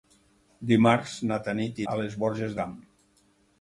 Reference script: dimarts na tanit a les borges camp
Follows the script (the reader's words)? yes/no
yes